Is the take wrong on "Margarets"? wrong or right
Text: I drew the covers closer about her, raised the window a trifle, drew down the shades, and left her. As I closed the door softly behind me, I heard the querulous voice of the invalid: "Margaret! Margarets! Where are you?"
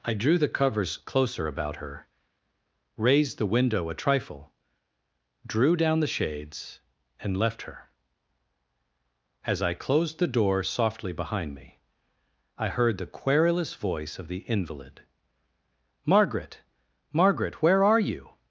wrong